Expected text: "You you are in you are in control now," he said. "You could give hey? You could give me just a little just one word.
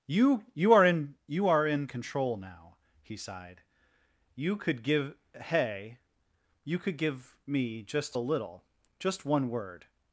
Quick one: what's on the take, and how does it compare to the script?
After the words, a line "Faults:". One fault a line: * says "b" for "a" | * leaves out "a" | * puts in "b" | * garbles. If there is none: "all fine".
"You you are in you are in control now," he sighed. "You could give hey? You could give me just a little just one word.
Faults:
* says "sighed" for "said"